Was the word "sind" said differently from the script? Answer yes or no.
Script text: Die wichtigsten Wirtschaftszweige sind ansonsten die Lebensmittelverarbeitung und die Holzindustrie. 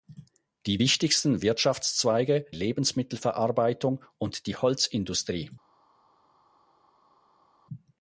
yes